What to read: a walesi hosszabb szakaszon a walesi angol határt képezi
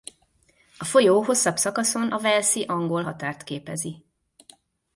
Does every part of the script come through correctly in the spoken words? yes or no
no